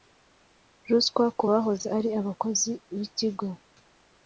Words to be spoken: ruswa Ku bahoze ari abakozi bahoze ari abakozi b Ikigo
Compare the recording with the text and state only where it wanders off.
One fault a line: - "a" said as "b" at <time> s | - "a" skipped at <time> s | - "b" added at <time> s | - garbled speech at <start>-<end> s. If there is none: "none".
- "bahoze ari abakozi" skipped at 2.7 s